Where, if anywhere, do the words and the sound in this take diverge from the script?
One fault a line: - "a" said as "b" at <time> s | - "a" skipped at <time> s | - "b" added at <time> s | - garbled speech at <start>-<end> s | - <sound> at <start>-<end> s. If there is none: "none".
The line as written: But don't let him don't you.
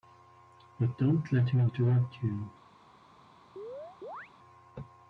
- "don't" said as "interrupt" at 1.6 s
- chirp at 3.6-4.3 s